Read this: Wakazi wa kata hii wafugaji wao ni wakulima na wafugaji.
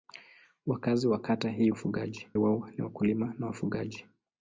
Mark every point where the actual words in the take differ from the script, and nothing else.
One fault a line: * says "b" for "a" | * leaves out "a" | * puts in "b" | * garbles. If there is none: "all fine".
all fine